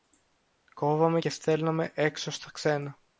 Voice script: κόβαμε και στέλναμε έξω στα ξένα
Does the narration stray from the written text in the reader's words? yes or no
no